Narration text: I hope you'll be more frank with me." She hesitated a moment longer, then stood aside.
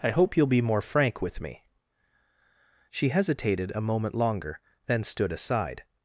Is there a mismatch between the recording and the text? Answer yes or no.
no